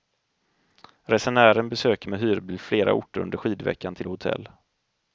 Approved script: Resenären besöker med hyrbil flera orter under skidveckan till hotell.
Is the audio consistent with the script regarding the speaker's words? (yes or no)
yes